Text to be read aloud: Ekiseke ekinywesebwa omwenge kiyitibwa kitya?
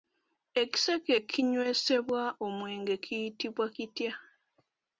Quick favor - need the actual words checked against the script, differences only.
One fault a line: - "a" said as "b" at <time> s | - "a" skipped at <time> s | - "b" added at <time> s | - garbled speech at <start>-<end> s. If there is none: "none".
none